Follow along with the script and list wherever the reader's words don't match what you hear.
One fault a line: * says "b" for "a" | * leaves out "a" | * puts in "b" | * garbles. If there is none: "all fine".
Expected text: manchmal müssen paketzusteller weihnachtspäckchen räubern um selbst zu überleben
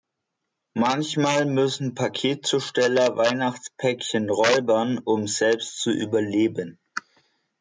all fine